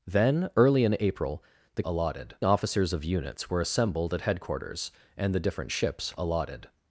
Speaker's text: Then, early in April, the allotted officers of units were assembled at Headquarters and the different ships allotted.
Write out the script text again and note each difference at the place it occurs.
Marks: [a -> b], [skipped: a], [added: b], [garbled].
Then, early in April, the allotted officers of units were assembled at Headquarters and the different ships allotted.